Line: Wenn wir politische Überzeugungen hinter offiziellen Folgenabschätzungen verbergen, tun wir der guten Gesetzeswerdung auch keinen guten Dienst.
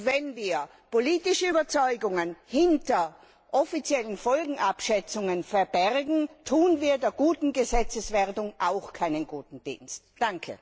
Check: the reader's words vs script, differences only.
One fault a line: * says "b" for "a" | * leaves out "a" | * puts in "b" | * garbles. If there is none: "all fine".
all fine